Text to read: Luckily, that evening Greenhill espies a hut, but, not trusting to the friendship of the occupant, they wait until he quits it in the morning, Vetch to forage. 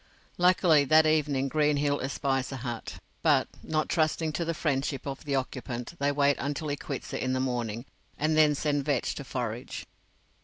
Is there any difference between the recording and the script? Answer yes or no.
yes